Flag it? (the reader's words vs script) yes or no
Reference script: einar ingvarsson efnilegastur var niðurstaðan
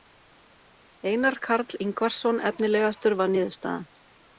yes